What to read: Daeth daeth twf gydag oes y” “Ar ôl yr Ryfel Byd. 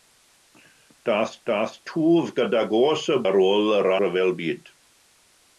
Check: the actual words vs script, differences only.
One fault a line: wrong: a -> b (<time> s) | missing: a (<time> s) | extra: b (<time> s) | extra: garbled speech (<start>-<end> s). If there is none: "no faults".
no faults